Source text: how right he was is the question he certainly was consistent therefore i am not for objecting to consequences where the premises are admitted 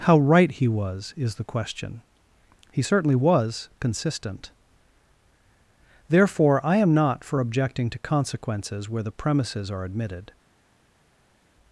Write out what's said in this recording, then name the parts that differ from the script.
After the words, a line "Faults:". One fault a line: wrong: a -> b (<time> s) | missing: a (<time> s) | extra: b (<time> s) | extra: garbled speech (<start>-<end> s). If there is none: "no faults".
how right he was is the question he certainly was consistent therefore i am not for objecting to consequences where the premises are admitted
Faults:
no faults